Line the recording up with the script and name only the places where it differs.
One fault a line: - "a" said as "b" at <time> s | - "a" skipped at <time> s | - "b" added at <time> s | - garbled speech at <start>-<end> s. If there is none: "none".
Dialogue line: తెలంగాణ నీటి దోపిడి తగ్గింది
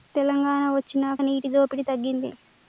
- "వొచ్చినాక" added at 0.7 s